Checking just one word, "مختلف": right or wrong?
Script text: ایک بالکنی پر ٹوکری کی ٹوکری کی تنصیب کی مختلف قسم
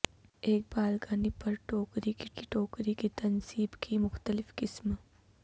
right